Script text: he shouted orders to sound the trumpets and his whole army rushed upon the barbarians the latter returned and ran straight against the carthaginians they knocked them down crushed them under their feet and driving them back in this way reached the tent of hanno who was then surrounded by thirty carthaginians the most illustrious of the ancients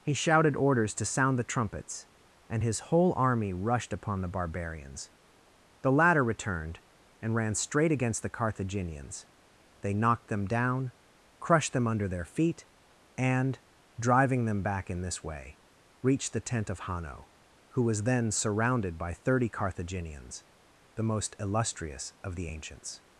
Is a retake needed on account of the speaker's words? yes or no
no